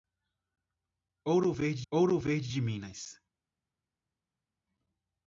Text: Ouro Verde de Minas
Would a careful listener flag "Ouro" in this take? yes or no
no